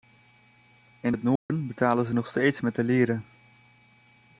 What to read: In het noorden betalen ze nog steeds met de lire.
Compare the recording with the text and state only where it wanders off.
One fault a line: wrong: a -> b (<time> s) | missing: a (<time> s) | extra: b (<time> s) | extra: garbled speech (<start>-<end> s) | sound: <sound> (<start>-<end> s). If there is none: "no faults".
sound: dropout (1.4-1.5 s)